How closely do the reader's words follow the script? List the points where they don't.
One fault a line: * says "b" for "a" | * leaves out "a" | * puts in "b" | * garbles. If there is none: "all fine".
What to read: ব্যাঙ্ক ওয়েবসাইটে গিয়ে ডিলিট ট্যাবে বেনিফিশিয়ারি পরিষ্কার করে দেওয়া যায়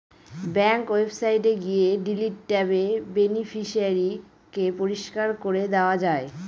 * puts in "কে"